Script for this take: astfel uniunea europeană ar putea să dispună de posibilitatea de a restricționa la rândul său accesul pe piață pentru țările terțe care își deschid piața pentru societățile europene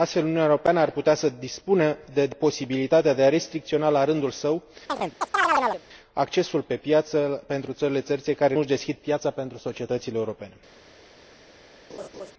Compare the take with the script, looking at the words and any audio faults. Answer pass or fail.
fail